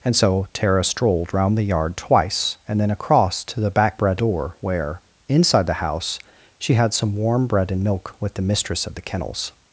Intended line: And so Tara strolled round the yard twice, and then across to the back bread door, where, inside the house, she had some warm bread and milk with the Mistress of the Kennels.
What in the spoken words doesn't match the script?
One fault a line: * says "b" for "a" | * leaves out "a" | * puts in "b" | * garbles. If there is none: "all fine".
all fine